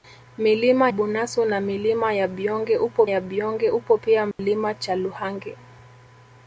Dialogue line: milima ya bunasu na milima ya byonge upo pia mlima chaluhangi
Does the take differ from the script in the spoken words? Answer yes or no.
yes